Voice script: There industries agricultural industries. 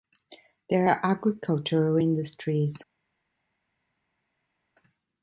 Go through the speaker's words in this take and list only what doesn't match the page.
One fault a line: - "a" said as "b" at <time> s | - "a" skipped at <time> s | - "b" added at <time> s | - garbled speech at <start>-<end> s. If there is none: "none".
- "industries" said as "are" at 0.9 s